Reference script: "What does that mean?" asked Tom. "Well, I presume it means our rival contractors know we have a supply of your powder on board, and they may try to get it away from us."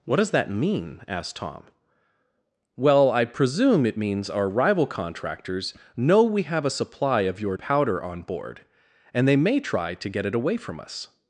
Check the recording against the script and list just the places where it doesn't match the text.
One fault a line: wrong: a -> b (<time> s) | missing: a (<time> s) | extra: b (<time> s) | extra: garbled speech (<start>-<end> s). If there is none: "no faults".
no faults